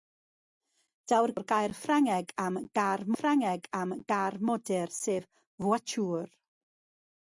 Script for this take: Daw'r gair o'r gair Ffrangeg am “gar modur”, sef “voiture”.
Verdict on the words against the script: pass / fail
fail